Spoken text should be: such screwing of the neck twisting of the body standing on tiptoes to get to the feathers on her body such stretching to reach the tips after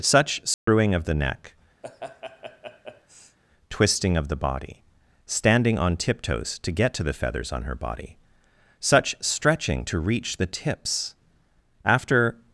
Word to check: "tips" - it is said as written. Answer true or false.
true